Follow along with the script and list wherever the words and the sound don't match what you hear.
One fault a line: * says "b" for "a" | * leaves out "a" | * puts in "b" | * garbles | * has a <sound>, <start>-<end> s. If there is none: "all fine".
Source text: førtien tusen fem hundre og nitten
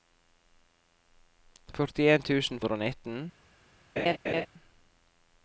* leaves out "fem"
* has a laugh, 4.0-4.5 s